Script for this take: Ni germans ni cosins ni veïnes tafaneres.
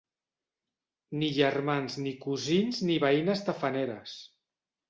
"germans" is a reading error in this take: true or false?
false